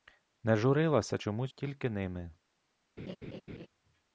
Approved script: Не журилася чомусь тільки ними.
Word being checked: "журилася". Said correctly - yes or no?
yes